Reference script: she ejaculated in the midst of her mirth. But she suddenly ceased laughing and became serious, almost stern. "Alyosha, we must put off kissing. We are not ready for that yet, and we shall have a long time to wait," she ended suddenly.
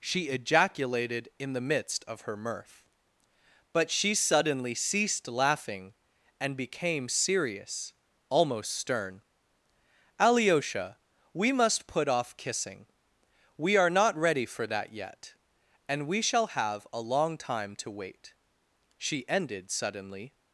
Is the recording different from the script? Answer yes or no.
no